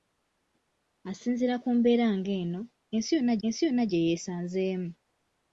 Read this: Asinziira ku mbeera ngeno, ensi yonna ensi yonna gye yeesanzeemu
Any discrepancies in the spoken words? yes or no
no